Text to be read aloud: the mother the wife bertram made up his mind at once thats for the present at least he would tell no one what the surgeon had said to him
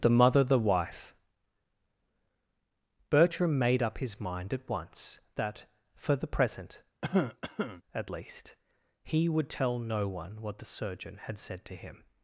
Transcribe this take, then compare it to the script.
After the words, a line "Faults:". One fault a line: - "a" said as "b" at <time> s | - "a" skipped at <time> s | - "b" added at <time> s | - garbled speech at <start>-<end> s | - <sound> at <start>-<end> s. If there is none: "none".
the mother the wife bertram made up his mind at once that for the present at least he would tell no one what the surgeon had said to him
Faults:
- "thats" said as "that" at 5.3 s
- cough at 7.0-7.8 s